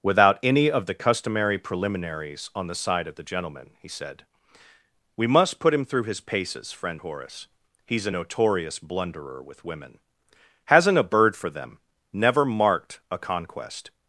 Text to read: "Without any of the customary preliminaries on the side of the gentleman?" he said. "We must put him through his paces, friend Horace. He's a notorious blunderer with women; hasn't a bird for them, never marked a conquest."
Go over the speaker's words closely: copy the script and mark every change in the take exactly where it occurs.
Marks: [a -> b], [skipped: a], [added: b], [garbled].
"Without any of the customary preliminaries on the side of the gentleman?" he said. "We must put him through his paces, friend Horace. He's a notorious blunderer with women; hasn't a bird for them, never marked a conquest."